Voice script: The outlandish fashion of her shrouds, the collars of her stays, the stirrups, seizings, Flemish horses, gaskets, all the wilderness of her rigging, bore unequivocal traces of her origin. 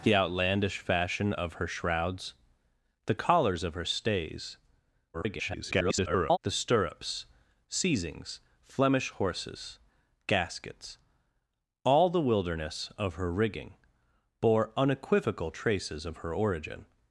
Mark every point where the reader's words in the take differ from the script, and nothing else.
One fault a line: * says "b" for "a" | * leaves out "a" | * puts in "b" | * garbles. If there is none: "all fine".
* garbles